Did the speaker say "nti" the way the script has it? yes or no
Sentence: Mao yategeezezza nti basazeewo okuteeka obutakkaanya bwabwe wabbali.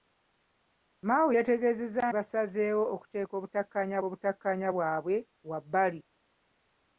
no